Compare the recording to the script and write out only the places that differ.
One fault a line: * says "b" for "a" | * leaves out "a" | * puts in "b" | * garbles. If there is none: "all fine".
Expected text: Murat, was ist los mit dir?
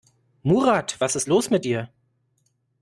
all fine